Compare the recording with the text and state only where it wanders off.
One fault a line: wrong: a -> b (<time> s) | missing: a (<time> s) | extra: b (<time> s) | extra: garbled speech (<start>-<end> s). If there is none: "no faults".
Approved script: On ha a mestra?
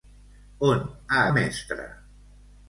no faults